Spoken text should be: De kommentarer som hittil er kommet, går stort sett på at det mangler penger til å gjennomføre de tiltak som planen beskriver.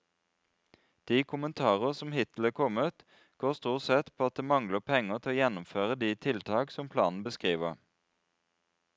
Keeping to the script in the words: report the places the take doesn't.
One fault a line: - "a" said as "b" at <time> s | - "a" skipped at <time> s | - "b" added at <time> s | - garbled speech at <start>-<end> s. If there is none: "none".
none